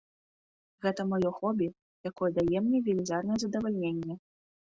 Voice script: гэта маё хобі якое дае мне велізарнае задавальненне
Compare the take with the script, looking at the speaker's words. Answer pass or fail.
pass